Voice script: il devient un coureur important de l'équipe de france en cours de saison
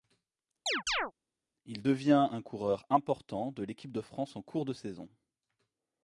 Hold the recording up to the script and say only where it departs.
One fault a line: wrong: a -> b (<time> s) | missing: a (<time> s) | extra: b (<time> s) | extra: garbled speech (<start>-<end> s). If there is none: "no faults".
no faults